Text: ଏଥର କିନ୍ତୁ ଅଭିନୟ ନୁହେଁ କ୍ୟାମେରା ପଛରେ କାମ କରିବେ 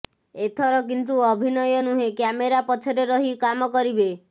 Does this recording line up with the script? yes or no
no